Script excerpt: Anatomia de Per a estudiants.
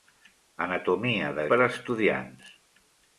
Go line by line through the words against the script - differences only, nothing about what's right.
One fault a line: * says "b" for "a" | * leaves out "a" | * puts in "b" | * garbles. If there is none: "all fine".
all fine